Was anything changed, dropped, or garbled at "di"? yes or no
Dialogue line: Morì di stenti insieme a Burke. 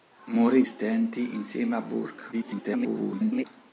yes